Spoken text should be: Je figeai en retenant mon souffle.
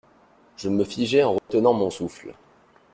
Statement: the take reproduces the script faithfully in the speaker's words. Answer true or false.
false